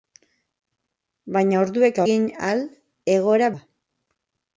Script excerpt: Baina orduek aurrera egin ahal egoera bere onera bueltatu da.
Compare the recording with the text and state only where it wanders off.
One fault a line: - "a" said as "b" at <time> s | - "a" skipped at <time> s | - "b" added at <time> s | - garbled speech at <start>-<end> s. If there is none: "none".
- "aurrera" skipped at 2.0 s
- "bere onera bueltatu" skipped at 3.5 s